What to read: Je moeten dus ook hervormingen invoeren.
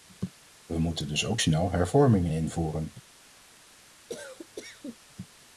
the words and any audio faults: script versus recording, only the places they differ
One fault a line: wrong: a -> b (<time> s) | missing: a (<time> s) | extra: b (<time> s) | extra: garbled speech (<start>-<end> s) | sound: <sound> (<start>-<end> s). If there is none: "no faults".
wrong: Je -> We (0.7 s)
extra: snel (1.4 s)
sound: cough (4.1-5.0 s)